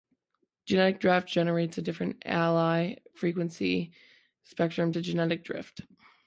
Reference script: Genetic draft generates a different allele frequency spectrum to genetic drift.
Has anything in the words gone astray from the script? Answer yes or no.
no